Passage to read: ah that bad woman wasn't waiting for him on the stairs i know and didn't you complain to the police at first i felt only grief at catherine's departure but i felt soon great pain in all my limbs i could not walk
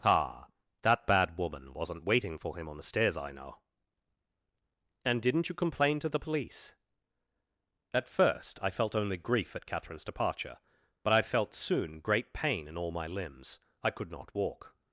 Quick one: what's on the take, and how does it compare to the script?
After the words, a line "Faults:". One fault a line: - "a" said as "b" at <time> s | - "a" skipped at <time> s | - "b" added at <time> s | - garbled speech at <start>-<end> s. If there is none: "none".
ah that bad woman wasn't waiting for him on the stairs i know and didn't you complain to the police at first i felt only grief at catherine's departure but i felt soon great pain in all my limbs i could not walk
Faults:
none